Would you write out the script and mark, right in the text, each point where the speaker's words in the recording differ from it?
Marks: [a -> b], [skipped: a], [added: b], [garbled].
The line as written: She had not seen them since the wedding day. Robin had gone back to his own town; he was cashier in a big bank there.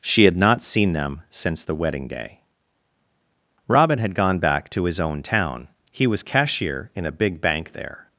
She had not seen them since the wedding day. Robin had gone back to his own town; he was cashier in a big bank there.